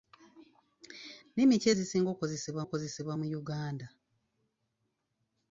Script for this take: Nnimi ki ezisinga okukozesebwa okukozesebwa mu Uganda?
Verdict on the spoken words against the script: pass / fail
pass